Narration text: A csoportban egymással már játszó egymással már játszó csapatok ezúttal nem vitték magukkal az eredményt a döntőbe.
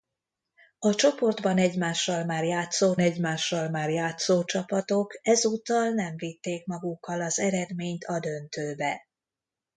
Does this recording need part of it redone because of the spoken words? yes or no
no